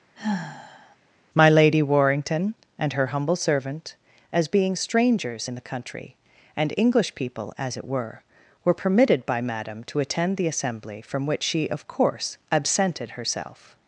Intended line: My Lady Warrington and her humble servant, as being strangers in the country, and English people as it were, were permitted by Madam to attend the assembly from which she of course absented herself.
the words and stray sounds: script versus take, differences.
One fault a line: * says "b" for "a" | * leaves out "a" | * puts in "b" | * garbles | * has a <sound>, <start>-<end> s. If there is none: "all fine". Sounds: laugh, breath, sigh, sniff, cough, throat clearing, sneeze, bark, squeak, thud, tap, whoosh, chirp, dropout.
* has a sigh, 0.2-1.0 s